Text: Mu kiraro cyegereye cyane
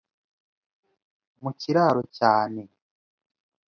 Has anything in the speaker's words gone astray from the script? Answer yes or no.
yes